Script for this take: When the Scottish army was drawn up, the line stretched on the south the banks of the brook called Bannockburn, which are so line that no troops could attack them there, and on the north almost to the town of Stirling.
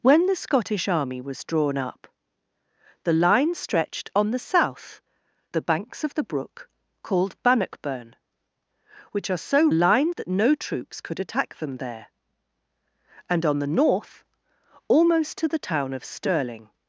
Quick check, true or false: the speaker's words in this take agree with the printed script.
true